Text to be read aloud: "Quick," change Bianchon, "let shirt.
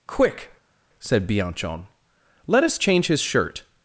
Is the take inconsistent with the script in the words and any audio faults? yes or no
yes